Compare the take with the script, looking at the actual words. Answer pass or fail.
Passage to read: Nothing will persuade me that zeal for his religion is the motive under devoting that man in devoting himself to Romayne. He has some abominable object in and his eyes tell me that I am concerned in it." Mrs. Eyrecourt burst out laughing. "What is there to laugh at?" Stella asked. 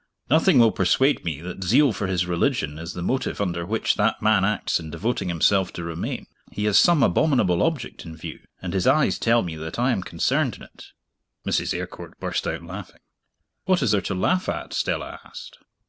fail